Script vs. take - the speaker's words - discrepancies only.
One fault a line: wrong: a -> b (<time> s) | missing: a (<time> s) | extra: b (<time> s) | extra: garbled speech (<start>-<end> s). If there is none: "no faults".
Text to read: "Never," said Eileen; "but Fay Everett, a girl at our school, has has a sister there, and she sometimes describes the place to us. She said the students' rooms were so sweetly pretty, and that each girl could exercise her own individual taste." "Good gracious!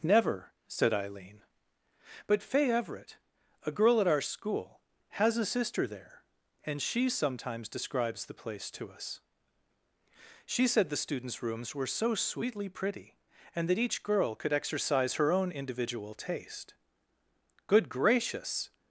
missing: has (5.4 s)